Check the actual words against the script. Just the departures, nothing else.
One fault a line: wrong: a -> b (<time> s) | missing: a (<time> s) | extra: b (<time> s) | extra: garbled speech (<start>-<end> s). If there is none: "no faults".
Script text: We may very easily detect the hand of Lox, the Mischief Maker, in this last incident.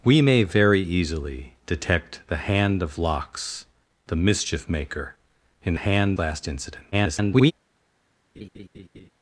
wrong: this -> hand (5.7 s)
extra: garbled speech (6.9-7.5 s)